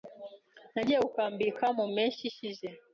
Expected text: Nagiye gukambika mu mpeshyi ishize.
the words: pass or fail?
pass